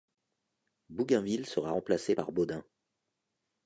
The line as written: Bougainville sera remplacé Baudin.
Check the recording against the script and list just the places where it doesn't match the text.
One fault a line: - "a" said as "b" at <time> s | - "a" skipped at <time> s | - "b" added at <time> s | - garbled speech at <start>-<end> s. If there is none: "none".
- "par" added at 2.1 s